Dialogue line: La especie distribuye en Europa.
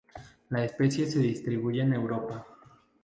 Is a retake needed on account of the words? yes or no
yes